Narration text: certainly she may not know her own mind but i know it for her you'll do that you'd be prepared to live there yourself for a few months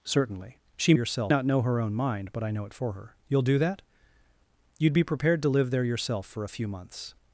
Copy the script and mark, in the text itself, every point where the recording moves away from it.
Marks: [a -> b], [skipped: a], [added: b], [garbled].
certainly she [may -> yourself] not know her own mind but i know it for her you'll do that you'd be prepared to live there yourself for a few months